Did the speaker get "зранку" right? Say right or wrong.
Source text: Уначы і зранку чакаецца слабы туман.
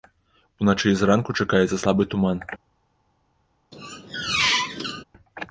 right